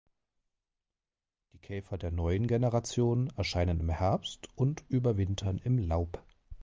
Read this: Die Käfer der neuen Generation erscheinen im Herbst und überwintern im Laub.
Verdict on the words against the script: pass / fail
pass